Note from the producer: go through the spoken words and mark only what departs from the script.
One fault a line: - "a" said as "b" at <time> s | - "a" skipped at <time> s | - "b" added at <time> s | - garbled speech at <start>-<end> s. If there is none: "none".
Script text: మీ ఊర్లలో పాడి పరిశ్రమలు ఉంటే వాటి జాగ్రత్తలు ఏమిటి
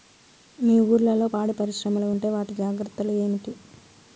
none